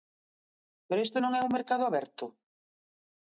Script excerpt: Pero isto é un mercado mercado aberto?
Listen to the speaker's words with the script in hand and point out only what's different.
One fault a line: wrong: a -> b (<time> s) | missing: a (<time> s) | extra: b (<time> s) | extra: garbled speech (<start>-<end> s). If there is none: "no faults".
extra: non (1.2 s)
missing: mercado (1.8 s)